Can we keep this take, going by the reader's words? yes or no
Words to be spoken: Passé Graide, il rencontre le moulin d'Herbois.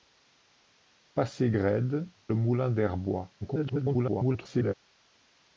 no